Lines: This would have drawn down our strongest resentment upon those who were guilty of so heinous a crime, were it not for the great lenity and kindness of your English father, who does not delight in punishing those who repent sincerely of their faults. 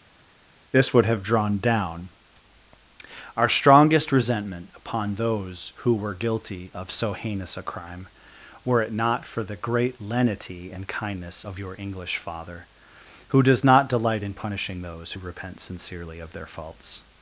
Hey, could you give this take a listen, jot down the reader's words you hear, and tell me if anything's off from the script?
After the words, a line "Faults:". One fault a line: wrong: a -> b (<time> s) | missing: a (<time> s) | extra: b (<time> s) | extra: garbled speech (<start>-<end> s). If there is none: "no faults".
This would have drawn down our strongest resentment upon those who were guilty of so heinous a crime, were it not for the great lenity and kindness of your English father, who does not delight in punishing those who repent sincerely of their faults.
Faults:
no faults